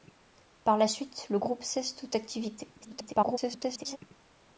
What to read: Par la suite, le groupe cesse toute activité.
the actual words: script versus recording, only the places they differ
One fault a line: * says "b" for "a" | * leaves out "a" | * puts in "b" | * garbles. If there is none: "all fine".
* garbles